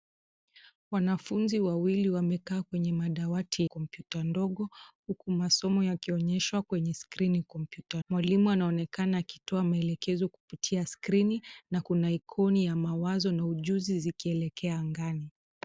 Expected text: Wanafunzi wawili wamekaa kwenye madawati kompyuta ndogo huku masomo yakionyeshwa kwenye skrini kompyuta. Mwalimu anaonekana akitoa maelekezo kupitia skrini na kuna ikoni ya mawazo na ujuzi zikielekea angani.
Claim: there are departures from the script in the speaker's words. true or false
false